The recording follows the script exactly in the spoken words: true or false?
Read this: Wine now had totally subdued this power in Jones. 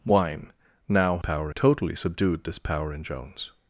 false